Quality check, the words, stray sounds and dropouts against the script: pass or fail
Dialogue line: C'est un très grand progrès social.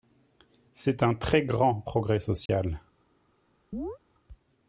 fail